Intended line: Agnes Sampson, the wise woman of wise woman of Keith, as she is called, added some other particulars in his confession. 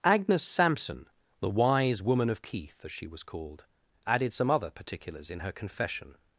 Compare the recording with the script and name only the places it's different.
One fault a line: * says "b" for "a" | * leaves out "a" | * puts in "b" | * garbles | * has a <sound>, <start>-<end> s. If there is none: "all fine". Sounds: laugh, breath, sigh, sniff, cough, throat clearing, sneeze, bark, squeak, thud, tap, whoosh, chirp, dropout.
* leaves out "wise woman of"
* says "was" for "is"
* says "her" for "his"